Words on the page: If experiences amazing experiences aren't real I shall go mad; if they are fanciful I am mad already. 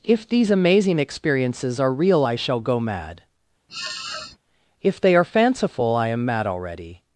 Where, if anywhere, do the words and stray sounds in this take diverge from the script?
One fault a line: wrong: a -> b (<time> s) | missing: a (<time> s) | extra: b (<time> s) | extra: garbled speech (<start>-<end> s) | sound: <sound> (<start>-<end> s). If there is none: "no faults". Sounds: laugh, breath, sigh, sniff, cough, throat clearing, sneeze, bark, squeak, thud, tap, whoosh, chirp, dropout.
wrong: experiences -> these (0.3 s)
wrong: aren't -> are (1.8 s)
sound: sniff (3.7-4.4 s)